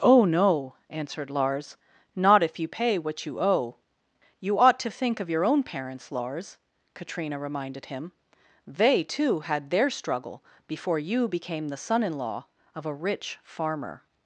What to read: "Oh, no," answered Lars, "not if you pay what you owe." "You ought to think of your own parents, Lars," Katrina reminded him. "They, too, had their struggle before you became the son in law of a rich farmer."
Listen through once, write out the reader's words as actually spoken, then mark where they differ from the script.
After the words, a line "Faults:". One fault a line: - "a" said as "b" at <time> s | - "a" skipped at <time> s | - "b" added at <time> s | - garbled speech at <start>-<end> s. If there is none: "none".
"Oh, no," answered Lars, "not if you pay what you owe." "You ought to think of your own parents, Lars," Katrina reminded him. "They, too, had their struggle before you became the son in law of a rich farmer."
Faults:
none